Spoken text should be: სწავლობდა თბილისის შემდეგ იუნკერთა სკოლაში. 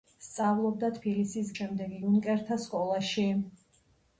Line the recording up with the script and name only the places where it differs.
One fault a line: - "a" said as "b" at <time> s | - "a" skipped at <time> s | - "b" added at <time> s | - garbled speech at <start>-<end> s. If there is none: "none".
none